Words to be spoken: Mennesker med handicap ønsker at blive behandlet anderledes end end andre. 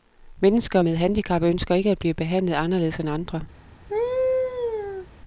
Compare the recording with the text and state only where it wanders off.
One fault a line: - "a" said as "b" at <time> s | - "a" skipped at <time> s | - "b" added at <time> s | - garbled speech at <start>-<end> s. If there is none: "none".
- "ikke" added at 1.7 s
- "end" skipped at 3.1 s